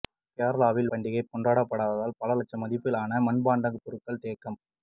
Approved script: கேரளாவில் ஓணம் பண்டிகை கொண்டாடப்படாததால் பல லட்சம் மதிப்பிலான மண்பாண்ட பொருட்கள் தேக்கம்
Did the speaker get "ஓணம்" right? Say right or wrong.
wrong